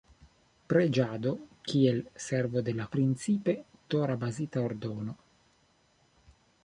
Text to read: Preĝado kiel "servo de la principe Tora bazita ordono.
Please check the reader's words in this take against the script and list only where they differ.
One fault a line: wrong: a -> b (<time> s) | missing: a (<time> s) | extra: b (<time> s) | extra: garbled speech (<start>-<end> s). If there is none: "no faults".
no faults